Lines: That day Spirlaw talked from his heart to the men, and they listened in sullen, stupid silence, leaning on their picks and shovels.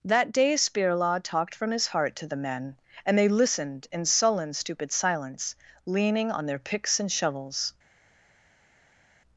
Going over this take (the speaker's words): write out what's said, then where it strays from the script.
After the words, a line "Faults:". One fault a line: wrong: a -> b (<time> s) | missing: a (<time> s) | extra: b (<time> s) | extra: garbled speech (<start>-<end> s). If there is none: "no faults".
That day Spirlaw talked from his heart to the men, and they listened in sullen, stupid silence, leaning on their picks and shovels.
Faults:
no faults